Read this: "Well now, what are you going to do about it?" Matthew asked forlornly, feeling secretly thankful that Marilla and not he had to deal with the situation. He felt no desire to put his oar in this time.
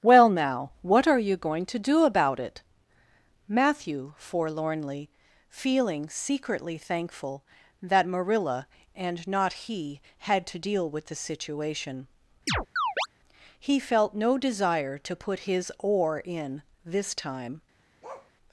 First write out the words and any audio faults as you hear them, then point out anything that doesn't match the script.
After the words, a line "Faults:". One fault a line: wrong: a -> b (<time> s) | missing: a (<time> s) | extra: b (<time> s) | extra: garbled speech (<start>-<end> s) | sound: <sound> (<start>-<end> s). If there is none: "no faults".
"Well now, what are you going to do about it?" Matthew forlornly, feeling secretly thankful that Marilla and not he had to deal with the situation. He felt no desire to put his oar in this time.
Faults:
missing: asked (4.2 s)
sound: chirp (12.5-13.1 s)
sound: bark (18.0-18.3 s)